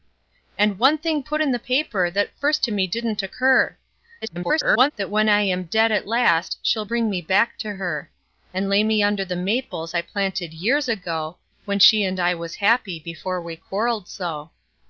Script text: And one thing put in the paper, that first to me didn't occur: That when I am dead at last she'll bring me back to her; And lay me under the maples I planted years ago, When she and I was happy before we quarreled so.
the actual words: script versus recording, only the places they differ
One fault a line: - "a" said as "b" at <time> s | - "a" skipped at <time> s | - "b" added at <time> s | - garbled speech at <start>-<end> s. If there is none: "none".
- garbled speech at 4.2-4.9 s